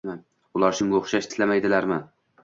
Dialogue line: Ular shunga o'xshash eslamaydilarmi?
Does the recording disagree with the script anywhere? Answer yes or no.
no